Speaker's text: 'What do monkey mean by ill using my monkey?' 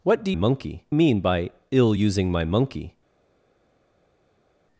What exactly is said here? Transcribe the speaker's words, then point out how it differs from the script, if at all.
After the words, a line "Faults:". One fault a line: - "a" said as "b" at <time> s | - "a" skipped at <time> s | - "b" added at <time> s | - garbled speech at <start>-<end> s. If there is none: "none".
'What do monkey mean by ill using my monkey?'
Faults:
none